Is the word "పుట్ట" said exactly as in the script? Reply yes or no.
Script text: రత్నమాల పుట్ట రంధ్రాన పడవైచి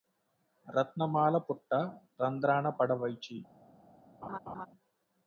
yes